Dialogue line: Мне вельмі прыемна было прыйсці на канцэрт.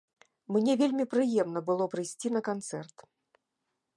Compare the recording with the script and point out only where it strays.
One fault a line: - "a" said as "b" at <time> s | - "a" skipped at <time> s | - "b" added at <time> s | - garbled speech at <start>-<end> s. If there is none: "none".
none